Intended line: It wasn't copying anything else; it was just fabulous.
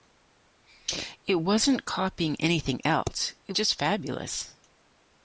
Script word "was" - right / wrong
wrong